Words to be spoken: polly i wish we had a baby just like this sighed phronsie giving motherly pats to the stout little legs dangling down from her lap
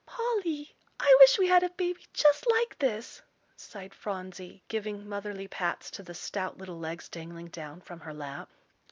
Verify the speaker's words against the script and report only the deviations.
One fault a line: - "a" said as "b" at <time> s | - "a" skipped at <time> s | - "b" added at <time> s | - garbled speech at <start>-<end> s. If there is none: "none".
none